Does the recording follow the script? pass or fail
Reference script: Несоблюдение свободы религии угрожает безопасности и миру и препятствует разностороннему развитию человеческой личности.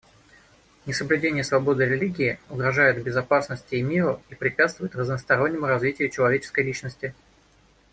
pass